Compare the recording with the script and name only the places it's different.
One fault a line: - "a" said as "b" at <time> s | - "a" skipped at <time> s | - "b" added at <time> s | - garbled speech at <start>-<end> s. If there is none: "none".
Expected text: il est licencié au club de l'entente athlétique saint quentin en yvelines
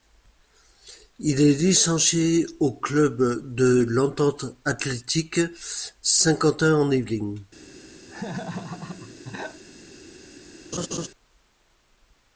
none